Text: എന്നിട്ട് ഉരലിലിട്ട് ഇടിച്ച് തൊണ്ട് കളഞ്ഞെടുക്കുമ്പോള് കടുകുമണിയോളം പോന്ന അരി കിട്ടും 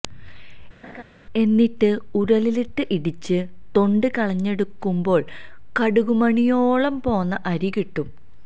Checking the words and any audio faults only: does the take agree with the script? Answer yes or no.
no